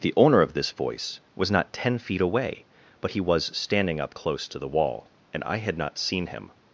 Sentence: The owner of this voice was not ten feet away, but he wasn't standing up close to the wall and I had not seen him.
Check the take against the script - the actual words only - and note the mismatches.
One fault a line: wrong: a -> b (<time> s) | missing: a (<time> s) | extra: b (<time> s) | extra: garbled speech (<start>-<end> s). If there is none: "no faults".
wrong: wasn't -> was (3.2 s)